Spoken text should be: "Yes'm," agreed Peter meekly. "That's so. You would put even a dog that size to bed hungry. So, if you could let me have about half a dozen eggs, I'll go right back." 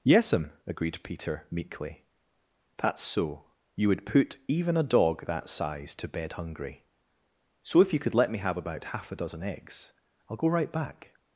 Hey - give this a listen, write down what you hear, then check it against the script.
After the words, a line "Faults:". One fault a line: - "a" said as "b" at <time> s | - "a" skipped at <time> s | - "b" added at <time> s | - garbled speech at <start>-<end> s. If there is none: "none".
"Yes'm," agreed Peter meekly. "That's so. You would put even a dog that size to bed hungry. So, if you could let me have about half a dozen eggs, I'll go right back."
Faults:
none